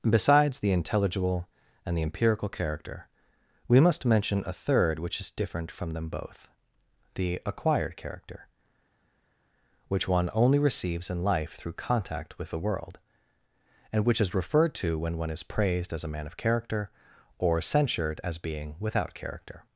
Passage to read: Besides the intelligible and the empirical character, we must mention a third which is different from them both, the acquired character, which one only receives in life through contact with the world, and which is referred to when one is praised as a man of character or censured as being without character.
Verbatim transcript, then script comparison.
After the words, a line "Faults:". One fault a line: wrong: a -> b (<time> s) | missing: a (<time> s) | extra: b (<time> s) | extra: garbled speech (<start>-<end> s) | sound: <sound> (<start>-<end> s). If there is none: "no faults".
Besides the intelligible and the empirical character, we must mention a third which is different from them both, the acquired character, which one only receives in life through contact with the world, and which is referred to when one is praised as a man of character or censured as being without character.
Faults:
no faults